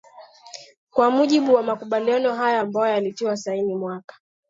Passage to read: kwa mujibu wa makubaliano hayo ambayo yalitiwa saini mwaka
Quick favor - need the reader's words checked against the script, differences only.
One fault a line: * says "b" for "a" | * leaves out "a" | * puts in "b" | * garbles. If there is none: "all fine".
all fine